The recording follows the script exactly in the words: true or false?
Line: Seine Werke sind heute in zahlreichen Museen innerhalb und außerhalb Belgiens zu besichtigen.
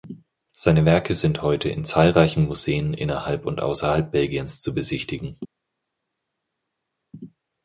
true